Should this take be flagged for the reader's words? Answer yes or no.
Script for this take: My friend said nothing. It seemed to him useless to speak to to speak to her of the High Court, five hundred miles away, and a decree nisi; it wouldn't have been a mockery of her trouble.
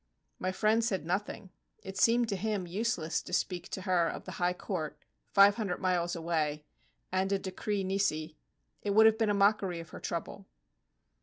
yes